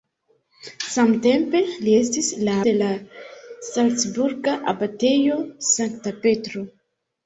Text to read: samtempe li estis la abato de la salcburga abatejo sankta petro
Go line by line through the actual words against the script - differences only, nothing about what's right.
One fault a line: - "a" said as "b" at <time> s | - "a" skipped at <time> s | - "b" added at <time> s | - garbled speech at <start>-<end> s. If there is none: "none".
- "abato" skipped at 2.5 s